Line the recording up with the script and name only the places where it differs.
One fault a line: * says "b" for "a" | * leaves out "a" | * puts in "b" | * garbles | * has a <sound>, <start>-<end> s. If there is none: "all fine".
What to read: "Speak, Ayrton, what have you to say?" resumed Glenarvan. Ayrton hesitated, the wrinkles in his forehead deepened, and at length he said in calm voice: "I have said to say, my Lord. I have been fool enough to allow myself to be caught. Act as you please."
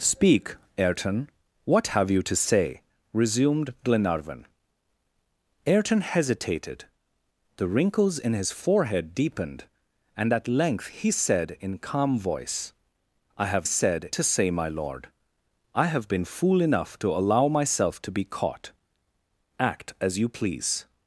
all fine